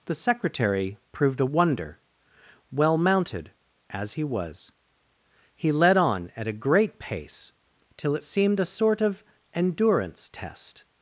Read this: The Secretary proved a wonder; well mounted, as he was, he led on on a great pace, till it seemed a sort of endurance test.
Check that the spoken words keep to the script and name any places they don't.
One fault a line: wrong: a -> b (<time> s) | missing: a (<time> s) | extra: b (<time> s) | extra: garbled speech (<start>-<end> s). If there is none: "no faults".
wrong: on -> at (6.4 s)